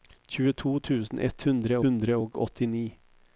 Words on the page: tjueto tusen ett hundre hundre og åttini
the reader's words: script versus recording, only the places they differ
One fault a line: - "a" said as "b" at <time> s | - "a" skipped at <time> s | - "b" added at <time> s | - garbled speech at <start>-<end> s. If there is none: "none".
none